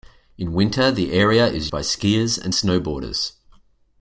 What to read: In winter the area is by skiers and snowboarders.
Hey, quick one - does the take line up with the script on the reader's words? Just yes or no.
yes